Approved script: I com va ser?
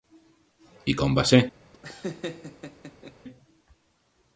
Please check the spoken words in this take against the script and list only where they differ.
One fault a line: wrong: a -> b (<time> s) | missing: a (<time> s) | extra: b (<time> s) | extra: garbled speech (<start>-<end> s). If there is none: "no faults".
no faults